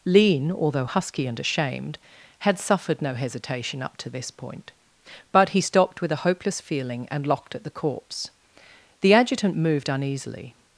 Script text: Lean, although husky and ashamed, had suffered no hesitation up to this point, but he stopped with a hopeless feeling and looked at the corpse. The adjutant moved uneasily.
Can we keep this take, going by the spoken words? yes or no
no